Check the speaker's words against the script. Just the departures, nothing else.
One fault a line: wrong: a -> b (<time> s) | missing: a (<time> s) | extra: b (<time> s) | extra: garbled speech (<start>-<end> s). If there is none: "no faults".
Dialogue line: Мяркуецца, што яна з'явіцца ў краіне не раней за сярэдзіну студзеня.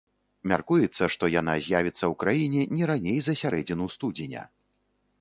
no faults